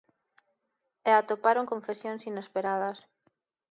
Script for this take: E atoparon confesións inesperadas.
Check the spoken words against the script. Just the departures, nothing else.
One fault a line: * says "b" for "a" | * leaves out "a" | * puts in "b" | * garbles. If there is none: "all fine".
all fine